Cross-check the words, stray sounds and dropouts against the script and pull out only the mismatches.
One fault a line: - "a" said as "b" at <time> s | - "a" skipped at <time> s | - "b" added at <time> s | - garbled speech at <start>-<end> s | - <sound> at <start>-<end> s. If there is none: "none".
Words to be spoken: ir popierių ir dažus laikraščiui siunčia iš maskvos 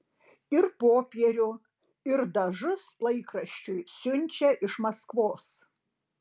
none